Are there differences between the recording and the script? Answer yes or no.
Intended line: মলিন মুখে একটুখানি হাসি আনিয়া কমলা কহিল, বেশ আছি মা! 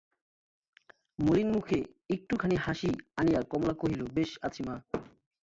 no